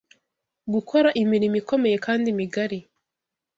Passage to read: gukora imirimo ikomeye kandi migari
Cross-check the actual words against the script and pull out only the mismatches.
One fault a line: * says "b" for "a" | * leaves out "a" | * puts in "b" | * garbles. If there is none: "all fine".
all fine